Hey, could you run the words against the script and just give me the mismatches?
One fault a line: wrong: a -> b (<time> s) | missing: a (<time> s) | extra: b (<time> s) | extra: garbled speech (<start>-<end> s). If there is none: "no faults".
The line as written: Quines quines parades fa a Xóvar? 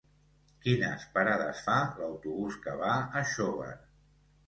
missing: quines (1.1 s)
extra: l'autobús que va (2.0 s)